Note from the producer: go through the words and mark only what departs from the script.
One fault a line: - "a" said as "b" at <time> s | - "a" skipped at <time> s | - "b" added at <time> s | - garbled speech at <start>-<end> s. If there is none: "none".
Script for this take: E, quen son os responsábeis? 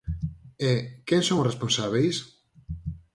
none